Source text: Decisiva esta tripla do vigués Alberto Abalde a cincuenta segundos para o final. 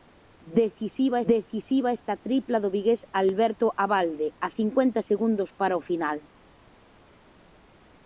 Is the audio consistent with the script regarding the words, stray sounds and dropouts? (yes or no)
no